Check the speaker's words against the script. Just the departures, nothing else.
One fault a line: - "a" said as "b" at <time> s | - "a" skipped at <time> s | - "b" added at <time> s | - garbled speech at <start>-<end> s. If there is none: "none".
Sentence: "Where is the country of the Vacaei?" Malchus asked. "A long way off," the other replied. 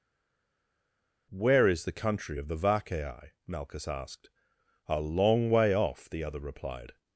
none